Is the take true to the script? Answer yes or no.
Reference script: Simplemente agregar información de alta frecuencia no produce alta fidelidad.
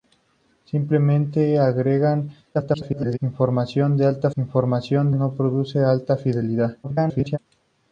no